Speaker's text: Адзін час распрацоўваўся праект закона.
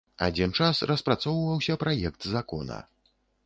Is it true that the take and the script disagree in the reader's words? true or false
false